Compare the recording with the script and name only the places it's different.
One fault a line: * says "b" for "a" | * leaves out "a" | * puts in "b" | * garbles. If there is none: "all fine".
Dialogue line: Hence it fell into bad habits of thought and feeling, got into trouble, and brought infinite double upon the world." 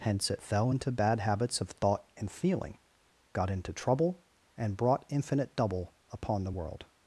all fine